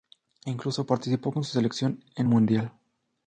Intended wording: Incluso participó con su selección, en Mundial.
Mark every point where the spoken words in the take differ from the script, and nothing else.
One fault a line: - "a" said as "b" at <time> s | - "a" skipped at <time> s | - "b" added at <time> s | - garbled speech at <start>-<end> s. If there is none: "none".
none